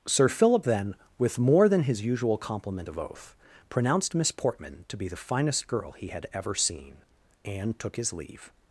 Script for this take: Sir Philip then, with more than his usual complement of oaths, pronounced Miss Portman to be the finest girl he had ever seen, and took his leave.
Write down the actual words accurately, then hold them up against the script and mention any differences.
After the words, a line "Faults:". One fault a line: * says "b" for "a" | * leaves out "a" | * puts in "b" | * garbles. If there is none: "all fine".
Sir Philip then, with more than his usual complement of oath, pronounced Miss Portman to be the finest girl he had ever seen, and took his leave.
Faults:
* says "oath" for "oaths"